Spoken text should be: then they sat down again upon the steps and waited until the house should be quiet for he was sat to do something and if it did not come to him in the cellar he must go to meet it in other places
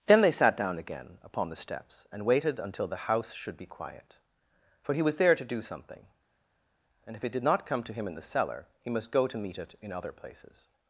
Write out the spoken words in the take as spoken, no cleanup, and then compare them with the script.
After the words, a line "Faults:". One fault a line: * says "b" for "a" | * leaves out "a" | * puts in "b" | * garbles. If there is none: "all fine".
then they sat down again upon the steps and waited until the house should be quiet for he was there to do something and if it did not come to him in the cellar he must go to meet it in other places
Faults:
* says "there" for "sat"